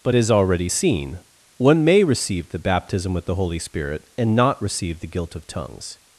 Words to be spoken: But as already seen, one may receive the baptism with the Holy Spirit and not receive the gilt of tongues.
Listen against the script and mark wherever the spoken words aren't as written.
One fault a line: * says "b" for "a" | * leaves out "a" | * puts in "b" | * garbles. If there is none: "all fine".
all fine